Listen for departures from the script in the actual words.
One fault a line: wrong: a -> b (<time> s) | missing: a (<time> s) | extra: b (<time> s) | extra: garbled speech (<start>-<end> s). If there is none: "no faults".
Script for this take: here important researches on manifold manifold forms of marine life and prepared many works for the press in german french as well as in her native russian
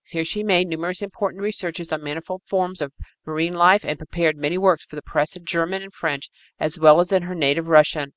extra: she made numerous (0.2 s)
missing: manifold (2.4 s)
extra: and (5.8 s)